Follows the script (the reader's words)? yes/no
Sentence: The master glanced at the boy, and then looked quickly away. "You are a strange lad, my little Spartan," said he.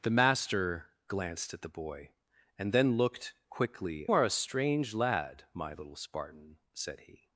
no